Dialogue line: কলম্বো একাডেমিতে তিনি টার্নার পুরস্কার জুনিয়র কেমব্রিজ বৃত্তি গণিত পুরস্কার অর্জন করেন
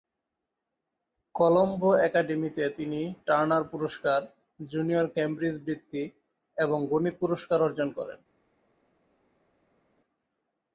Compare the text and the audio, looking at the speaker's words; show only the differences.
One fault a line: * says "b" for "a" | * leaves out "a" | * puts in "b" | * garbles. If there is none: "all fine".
* puts in "এবং"